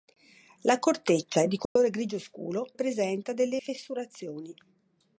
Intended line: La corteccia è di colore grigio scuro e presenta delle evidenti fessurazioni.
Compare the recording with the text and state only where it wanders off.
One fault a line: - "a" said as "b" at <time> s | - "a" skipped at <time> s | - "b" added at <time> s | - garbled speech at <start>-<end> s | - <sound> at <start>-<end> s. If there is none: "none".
- dropout at 1.7-1.8 s
- "e" skipped at 2.8 s
- "evidenti" skipped at 3.6 s